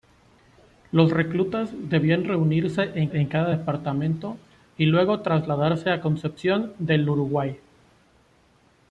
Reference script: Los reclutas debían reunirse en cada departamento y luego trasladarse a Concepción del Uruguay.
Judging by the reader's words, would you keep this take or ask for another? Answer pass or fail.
fail